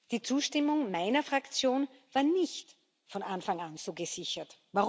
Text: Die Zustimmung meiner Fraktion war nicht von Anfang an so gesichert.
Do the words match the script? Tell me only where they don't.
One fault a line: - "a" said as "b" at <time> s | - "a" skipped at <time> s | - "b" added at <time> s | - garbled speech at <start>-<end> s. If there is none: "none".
none